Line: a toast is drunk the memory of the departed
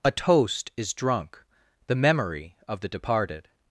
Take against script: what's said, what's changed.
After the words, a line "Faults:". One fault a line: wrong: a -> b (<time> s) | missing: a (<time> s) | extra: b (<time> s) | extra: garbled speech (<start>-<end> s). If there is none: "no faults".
a toast is drunk the memory of the departed
Faults:
no faults